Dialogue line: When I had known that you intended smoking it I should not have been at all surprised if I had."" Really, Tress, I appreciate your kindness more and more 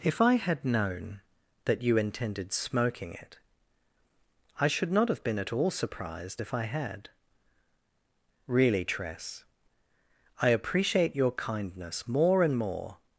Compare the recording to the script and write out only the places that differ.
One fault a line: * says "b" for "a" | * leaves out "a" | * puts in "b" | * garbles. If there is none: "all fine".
* says "If" for "When"